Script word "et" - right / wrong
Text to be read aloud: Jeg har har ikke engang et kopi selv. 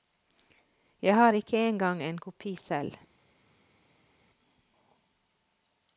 wrong